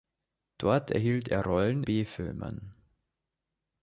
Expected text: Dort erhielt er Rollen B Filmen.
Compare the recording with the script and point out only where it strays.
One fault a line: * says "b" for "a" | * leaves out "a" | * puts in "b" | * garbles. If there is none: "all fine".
all fine